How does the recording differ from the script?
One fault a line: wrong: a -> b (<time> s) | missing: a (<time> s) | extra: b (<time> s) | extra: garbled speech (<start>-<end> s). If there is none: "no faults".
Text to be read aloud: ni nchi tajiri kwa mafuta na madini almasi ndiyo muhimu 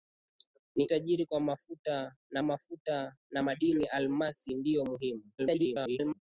missing: nchi (0.8 s)
extra: mafuta na (2.4 s)
extra: garbled speech (5.4-6.2 s)